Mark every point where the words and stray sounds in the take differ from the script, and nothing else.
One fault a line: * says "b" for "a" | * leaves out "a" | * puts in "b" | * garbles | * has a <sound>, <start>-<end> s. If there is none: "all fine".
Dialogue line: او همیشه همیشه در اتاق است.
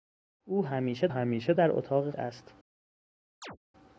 * has a chirp, 3.4-3.6 s